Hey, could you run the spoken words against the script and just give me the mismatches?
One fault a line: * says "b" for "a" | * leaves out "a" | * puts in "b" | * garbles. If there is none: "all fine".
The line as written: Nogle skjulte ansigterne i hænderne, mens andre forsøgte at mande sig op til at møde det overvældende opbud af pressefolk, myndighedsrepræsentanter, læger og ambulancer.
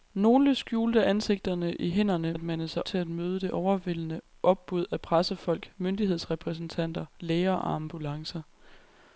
* leaves out "mens andre forsøgte"
* leaves out "op"